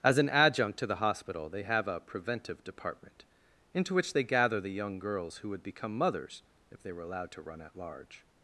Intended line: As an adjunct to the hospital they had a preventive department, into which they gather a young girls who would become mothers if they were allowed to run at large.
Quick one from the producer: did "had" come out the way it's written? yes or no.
no